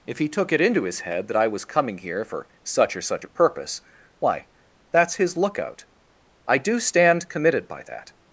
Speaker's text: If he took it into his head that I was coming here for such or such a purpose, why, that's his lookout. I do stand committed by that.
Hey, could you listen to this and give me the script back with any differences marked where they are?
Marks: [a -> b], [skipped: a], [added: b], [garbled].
If he took it into his head that I was coming here for such or such a purpose, why, that's his lookout. I do stand committed by that.